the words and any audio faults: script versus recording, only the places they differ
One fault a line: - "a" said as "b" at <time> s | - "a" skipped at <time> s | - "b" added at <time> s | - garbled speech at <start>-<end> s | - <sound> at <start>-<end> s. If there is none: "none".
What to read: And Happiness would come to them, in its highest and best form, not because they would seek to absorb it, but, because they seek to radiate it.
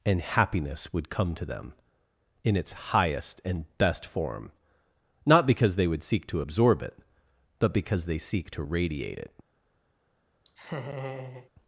- laugh at 10.4-11.5 s